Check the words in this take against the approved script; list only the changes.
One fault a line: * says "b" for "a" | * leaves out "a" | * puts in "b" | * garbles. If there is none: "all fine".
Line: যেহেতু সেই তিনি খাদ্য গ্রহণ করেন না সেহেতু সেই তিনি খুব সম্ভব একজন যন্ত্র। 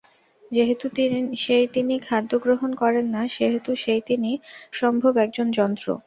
* leaves out "খুব"